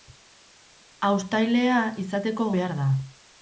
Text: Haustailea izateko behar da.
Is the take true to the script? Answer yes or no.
yes